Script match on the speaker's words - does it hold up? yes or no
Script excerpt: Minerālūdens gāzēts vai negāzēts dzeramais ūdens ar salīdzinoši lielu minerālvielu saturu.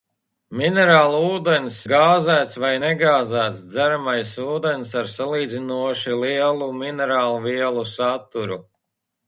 yes